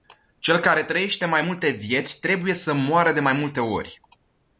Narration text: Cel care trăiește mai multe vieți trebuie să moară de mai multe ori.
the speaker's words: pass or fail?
pass